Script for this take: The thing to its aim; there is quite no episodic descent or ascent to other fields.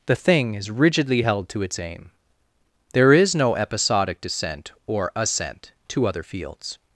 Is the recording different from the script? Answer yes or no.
yes